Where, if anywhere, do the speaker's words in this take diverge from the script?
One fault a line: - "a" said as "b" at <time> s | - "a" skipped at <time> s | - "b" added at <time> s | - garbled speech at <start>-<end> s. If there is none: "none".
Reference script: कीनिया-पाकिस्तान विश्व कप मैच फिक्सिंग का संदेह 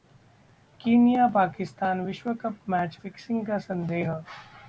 none